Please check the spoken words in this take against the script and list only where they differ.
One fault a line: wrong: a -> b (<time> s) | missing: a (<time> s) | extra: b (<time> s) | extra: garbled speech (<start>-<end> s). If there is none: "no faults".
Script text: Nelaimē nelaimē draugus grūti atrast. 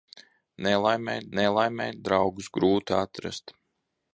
no faults